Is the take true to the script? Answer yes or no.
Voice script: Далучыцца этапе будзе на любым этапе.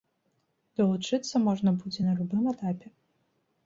no